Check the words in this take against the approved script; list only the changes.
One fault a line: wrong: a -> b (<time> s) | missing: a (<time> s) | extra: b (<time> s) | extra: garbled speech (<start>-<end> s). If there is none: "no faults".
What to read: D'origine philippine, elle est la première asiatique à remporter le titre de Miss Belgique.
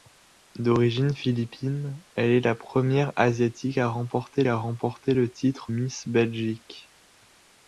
extra: à remporter (4.5 s)
missing: de (5.7 s)